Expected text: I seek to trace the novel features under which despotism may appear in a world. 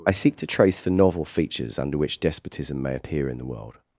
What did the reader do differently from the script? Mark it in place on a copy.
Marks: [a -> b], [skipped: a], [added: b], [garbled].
I seek to trace the novel features under which despotism may appear in [a -> the] world.